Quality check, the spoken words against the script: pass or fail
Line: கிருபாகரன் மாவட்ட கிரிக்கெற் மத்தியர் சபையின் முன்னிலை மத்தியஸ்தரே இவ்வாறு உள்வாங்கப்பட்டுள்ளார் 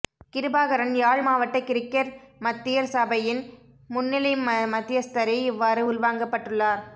fail